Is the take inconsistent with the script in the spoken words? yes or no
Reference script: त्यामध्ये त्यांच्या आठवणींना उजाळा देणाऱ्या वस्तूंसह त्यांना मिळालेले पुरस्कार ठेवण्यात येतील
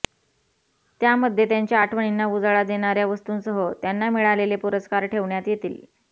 no